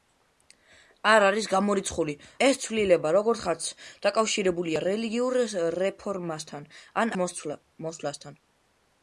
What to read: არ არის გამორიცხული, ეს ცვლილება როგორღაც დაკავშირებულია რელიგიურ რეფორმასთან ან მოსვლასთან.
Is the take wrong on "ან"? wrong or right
right